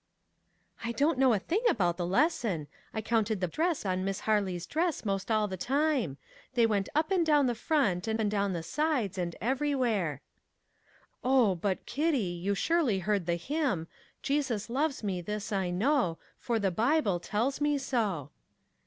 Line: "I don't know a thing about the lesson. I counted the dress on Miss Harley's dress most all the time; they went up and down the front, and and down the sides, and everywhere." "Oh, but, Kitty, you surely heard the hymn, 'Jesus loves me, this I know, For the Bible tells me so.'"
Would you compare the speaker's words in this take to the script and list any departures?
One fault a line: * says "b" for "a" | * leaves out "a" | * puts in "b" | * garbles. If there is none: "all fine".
all fine